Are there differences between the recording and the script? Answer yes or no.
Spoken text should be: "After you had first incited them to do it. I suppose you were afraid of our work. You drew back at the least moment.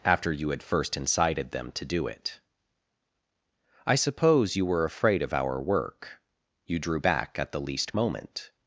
no